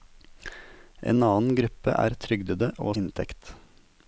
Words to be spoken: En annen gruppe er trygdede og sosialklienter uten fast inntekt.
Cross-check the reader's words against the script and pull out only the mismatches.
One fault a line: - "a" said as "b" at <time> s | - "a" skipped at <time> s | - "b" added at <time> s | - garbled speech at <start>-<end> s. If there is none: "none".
- "sosialklienter uten fast" skipped at 2.9 s